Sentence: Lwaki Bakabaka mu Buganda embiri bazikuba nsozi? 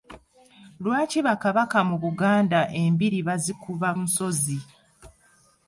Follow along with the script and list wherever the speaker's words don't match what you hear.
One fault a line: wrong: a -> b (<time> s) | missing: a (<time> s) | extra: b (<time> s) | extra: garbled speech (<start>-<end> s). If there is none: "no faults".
no faults